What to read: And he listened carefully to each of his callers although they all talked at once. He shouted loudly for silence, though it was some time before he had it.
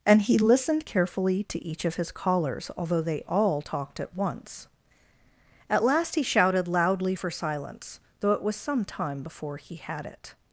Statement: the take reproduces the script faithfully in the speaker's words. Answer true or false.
false